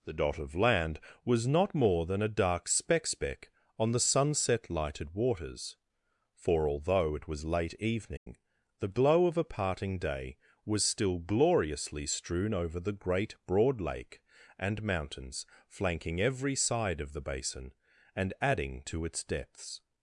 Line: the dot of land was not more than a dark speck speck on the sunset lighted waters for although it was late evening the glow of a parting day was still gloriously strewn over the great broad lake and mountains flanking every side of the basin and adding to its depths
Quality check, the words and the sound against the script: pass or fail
fail